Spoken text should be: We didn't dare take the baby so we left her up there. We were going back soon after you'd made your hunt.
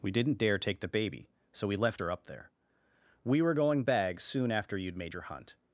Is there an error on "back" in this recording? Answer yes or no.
yes